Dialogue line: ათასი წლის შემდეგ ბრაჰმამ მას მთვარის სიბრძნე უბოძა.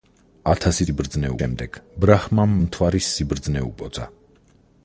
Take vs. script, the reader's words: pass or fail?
fail